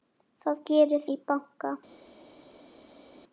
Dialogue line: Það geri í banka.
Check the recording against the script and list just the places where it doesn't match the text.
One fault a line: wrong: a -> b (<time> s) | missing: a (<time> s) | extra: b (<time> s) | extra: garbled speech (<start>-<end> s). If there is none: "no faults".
no faults